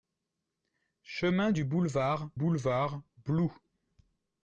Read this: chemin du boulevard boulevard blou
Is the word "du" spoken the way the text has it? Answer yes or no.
yes